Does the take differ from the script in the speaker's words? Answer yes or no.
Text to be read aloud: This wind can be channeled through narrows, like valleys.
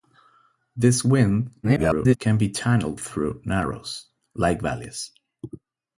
yes